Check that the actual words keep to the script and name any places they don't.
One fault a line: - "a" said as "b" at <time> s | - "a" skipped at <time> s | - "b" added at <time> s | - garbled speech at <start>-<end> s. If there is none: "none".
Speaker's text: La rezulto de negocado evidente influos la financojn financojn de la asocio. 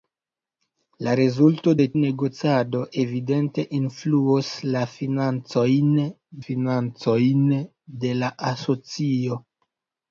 none